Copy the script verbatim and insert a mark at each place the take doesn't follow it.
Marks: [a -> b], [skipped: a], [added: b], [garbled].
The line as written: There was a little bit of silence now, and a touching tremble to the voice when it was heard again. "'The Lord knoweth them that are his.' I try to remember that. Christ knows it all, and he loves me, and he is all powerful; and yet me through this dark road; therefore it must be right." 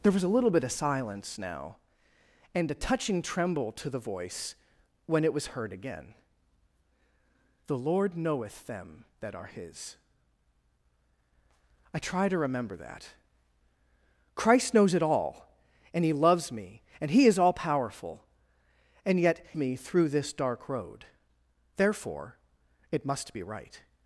There was a little bit of silence now, and a touching tremble to the voice when it was heard again. "'The Lord knoweth them that are his.' I try to remember that. Christ knows it all, and he loves me, and he is all powerful; and yet me through this dark road; therefore it must be right."